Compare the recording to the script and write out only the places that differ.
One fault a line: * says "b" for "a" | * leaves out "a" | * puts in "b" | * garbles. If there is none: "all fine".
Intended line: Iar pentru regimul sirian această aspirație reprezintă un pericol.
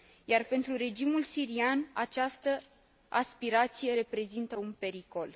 all fine